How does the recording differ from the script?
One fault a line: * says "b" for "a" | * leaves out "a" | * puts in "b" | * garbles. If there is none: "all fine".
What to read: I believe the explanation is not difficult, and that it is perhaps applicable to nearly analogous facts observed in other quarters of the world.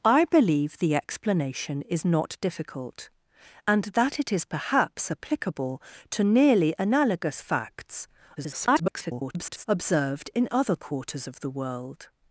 * garbles